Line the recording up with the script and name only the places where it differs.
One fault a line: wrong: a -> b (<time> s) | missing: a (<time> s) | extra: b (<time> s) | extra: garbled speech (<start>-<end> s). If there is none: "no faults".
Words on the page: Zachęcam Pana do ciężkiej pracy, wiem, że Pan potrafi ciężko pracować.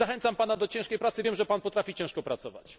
no faults